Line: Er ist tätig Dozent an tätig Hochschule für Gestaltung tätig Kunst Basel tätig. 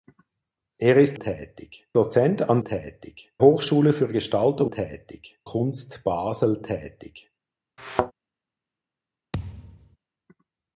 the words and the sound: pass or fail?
fail